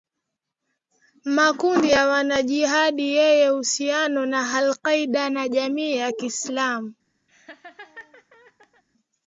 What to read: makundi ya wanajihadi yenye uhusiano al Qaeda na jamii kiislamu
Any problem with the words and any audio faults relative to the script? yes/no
yes